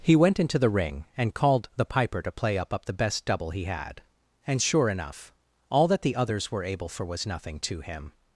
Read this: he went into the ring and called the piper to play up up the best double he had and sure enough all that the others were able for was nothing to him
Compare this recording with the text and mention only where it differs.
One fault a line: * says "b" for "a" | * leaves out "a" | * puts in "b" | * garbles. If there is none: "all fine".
all fine